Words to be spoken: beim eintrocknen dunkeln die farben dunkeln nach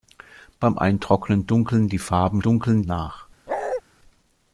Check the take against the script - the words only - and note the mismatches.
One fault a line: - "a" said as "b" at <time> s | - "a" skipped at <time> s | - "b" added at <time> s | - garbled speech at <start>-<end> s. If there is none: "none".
none